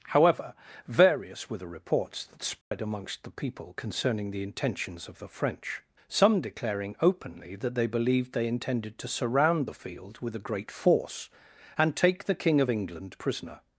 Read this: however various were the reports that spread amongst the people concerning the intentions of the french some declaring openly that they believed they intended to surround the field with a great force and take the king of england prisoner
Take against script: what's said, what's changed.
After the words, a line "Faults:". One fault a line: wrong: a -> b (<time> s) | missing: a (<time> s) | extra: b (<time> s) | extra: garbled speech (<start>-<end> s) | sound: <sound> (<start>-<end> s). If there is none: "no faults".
however various were the reports that spread amongst the people concerning the intentions of the french some declaring openly that they believed they intended to surround the field with a great force and take the king of england prisoner
Faults:
sound: dropout (2.6-2.7 s)